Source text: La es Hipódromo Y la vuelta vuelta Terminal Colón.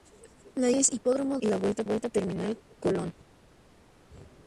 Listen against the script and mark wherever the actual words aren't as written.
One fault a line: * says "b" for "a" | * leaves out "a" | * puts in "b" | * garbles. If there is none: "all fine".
all fine